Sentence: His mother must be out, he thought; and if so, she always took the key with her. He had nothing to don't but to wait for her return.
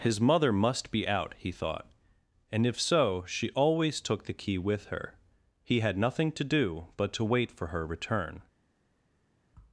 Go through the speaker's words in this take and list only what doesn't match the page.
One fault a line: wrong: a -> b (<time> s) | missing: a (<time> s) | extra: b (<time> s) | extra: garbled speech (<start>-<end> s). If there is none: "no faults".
wrong: don't -> do (6.5 s)